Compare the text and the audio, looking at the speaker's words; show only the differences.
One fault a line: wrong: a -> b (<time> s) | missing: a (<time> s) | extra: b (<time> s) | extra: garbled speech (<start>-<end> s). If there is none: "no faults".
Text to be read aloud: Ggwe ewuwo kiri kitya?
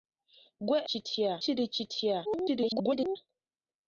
wrong: ewuwo -> kitya (0.9 s)
extra: garbled speech (2.2-3.2 s)